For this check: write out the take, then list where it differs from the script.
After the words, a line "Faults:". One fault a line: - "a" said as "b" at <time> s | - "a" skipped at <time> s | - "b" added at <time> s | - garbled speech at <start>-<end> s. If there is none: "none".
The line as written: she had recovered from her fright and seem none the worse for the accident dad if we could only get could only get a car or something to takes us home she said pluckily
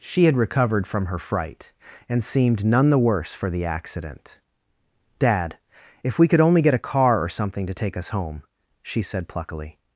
she had recovered from her fright and seemed none the worse for the accident dad if we could only get a car or something to take us home she said pluckily
Faults:
- "seem" said as "seemed" at 2.2 s
- "could only get" skipped at 6.7 s
- "takes" said as "take" at 7.7 s